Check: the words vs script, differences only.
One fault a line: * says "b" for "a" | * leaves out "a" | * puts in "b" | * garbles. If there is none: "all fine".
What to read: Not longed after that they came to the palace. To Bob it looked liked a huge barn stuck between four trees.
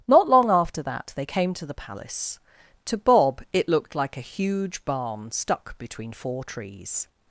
* says "long" for "longed"
* says "like" for "liked"